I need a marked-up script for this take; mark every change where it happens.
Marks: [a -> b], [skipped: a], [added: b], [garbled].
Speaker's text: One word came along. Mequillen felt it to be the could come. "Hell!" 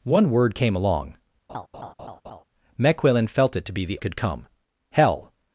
One word came along. Mequillen felt it to be the could come. "Hell!"